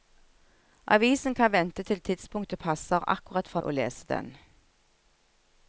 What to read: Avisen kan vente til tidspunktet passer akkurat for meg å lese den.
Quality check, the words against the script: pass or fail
fail